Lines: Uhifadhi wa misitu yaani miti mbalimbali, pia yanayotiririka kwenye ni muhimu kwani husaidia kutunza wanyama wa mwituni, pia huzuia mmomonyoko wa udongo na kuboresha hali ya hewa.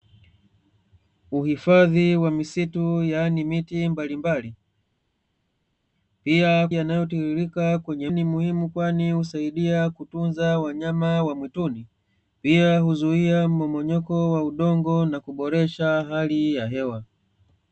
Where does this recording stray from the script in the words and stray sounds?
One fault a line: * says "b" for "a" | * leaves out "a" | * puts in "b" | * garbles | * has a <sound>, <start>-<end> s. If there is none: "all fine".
all fine